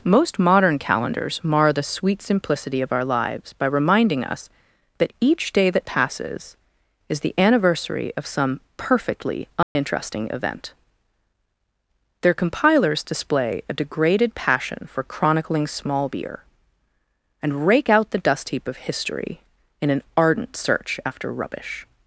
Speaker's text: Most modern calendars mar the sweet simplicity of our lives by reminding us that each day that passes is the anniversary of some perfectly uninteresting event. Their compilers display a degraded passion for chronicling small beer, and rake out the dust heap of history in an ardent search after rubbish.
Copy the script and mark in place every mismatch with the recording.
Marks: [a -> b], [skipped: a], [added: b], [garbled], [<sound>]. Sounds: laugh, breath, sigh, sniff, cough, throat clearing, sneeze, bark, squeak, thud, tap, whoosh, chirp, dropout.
Most modern calendars mar the sweet simplicity of our lives by reminding us that each day that passes is the anniversary of some perfectly uninteresting [dropout] event. Their compilers display a degraded passion for chronicling small beer, and rake out the dust heap of history in an ardent search after rubbish.